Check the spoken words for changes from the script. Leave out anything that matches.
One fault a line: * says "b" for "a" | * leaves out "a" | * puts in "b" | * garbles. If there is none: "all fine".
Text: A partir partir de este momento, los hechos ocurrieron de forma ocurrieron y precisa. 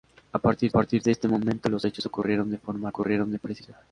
all fine